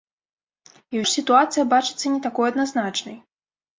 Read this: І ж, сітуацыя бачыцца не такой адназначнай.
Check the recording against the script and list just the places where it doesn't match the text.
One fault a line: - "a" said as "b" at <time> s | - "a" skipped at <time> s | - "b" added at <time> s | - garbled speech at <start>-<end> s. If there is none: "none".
none